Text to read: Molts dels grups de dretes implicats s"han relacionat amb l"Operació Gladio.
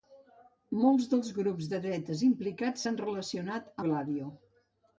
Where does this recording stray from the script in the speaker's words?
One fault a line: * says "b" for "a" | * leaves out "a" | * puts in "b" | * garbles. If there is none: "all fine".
* leaves out "amb l"Operació"